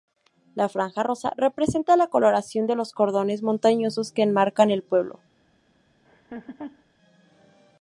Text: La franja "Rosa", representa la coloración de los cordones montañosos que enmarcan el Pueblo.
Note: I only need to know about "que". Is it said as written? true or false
true